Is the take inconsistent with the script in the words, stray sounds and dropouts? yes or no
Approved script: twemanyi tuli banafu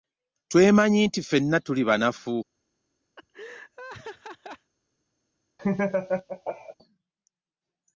yes